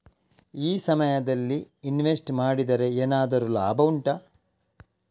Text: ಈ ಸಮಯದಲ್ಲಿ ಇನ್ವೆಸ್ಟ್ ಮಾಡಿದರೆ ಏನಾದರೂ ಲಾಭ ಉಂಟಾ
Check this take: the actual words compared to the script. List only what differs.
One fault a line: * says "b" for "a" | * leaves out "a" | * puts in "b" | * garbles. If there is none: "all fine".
all fine